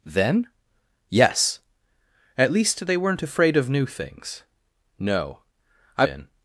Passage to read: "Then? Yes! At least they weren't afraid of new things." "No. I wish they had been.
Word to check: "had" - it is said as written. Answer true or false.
false